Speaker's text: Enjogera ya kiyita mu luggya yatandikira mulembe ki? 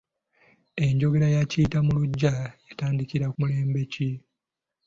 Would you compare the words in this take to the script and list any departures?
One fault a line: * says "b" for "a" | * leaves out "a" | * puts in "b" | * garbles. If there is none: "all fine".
all fine